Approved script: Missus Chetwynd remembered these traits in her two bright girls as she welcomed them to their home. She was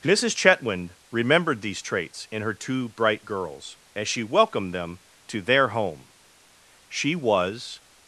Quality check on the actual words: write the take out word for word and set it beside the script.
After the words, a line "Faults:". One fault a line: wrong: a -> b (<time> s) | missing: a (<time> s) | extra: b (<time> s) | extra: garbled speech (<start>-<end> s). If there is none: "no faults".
Missus Chetwynd remembered these traits in her two bright girls as she welcomed them to their home. She was
Faults:
no faults